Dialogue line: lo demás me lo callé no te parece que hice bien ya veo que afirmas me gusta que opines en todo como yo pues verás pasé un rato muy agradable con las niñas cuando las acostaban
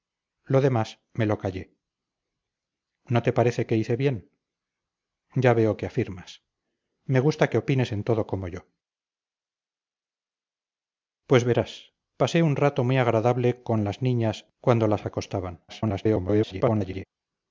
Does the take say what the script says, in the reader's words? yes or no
no